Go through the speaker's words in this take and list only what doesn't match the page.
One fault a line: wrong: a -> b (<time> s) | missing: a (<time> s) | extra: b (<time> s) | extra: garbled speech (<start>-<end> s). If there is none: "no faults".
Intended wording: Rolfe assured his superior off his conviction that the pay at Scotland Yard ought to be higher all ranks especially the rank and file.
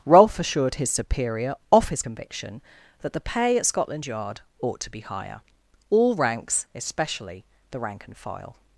no faults